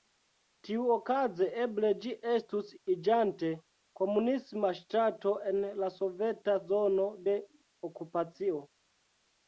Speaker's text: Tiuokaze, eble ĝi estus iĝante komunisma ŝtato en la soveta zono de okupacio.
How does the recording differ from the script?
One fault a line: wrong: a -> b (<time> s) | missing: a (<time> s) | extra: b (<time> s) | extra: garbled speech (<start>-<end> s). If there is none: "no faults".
no faults